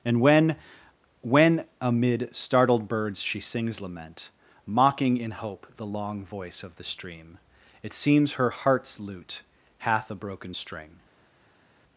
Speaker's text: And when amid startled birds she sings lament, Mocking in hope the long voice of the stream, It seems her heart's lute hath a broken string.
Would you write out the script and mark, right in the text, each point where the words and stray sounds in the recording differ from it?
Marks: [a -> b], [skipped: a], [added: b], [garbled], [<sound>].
And when [added: when] amid startled birds she sings lament, Mocking in hope the long voice of the stream, It seems her heart's lute hath a broken string.